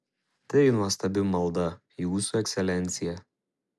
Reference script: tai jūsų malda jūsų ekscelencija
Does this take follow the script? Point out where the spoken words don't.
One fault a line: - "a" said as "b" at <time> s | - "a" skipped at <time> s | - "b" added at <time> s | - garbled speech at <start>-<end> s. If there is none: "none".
- "jūsų" said as "nuostabi" at 0.8 s